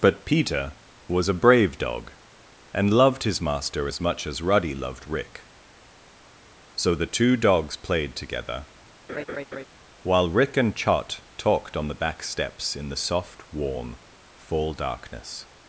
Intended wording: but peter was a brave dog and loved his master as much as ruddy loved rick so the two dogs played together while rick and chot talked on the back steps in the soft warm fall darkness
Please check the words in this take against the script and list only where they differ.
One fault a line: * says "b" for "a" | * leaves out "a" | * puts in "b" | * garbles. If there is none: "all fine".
all fine